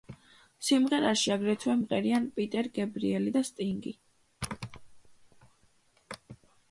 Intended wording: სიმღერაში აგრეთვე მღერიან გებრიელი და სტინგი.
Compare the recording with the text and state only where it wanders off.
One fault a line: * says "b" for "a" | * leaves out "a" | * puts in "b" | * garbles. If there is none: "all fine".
* puts in "პიტერ"